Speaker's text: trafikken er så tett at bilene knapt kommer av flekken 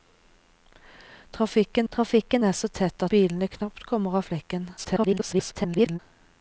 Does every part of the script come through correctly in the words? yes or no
no